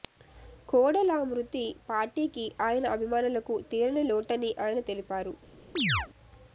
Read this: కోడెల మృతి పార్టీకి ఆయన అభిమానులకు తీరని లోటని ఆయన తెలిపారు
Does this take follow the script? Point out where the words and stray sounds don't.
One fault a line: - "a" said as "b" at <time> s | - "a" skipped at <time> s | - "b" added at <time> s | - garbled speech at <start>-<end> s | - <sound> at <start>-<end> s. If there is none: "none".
- chirp at 5.8-6.1 s